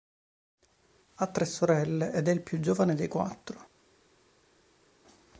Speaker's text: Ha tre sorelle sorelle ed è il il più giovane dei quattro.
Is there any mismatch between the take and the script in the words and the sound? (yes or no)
yes